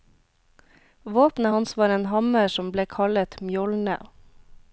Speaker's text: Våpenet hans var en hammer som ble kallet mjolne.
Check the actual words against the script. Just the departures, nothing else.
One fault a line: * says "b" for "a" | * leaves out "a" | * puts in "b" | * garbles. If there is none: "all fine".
all fine